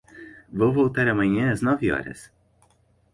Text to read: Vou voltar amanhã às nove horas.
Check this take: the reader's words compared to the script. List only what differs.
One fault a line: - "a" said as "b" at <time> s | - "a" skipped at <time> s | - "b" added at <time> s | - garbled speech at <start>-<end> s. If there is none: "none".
none